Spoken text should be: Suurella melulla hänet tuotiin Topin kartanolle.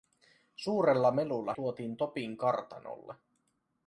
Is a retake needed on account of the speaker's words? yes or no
yes